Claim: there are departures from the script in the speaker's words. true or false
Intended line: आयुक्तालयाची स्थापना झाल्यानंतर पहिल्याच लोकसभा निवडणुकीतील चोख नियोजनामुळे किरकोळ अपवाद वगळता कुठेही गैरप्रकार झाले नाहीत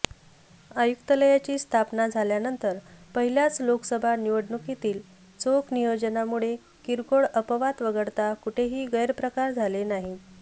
false